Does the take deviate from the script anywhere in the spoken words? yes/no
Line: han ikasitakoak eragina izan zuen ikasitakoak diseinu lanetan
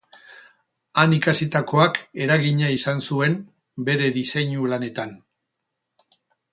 yes